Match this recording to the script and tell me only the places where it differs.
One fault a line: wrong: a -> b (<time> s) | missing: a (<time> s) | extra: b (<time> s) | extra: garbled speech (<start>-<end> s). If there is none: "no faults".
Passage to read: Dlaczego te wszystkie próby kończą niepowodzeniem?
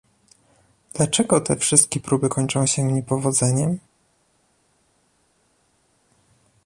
extra: się (2.7 s)